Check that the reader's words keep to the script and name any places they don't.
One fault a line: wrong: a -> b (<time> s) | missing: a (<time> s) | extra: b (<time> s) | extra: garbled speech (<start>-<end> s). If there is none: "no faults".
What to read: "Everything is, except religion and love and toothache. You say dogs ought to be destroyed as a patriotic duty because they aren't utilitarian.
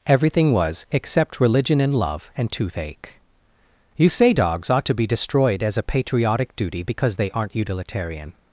wrong: is -> was (0.5 s)